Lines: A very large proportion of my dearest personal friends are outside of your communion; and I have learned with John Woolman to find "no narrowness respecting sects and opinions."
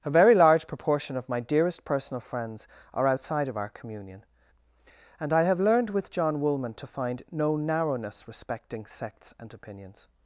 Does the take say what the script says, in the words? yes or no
no